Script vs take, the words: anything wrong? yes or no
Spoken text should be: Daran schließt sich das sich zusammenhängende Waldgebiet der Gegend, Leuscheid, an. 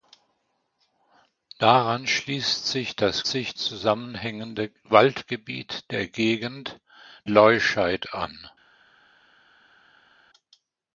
no